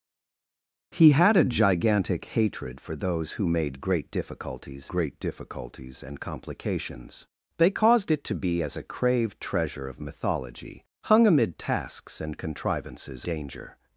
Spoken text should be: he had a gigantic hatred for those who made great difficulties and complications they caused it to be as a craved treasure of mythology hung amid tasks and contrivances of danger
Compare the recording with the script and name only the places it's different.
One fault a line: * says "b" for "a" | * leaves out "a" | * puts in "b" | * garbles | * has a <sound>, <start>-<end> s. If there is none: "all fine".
* puts in "great difficulties"
* leaves out "of"